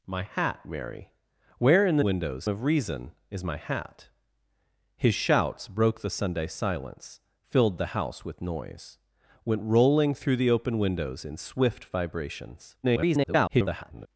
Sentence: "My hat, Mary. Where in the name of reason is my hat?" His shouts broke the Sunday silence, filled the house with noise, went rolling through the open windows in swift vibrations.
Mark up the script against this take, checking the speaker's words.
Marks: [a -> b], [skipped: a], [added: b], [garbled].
"My hat, Mary. Where in the [name -> windows] of reason is my hat?" His shouts broke the Sunday silence, filled the house with noise, went rolling through the open windows in swift vibrations. [garbled]